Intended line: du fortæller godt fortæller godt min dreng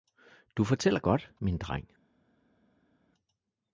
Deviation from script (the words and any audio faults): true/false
true